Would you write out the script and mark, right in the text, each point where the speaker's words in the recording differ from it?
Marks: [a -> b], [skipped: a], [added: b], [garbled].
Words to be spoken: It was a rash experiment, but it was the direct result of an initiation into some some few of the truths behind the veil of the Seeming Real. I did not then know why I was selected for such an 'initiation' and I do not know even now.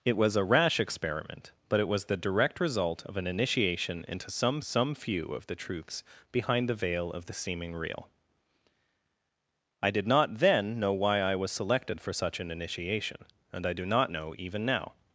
It was a rash experiment, but it was the direct result of an initiation into some some few of the truths behind the veil of the Seeming Real. I did not then know why I was selected for such an 'initiation' and I do not know even now.